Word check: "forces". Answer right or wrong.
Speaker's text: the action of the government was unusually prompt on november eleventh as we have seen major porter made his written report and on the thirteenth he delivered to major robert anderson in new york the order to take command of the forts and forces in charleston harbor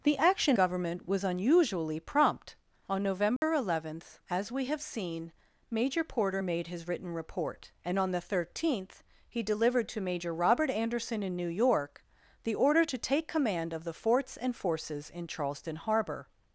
right